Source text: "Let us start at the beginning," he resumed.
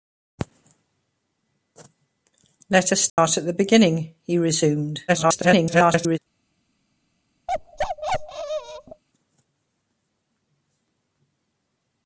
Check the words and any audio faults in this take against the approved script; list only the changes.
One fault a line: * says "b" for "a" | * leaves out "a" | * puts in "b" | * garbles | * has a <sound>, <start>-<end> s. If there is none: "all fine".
* has a dropout, 3.1-3.2 s
* garbles
* has a bark, 7.5-9.0 s